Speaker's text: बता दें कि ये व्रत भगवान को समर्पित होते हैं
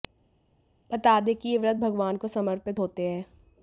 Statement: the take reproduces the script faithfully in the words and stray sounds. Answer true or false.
true